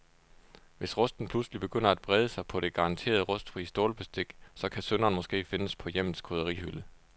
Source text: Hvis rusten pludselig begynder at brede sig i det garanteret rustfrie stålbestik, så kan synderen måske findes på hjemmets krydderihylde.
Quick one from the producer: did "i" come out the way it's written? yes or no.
no